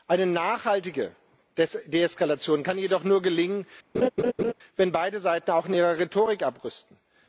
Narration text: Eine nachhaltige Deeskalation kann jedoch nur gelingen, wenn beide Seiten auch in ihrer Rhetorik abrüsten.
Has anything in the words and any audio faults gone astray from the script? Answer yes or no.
yes